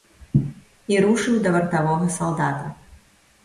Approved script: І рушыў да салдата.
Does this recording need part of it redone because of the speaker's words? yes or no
yes